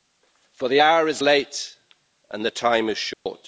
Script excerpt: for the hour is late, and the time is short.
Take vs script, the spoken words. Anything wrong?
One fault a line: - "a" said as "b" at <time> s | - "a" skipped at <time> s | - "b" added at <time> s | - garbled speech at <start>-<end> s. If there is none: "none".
none